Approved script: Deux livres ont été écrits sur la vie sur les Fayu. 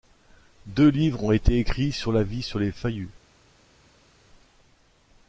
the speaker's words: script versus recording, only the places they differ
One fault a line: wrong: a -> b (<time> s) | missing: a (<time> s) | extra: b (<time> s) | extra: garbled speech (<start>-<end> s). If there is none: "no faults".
no faults